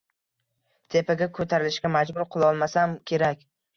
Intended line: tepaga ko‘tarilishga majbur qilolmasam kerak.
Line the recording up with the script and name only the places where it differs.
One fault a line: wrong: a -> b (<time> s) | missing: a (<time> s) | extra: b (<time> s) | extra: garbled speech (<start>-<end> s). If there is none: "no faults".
no faults